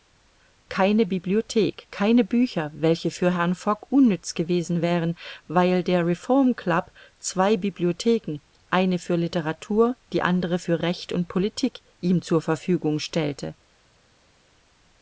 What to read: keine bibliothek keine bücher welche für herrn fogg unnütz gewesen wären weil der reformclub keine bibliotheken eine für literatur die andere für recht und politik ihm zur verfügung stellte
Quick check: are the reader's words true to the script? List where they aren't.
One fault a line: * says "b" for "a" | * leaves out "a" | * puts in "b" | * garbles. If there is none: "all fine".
* says "zwei" for "keine"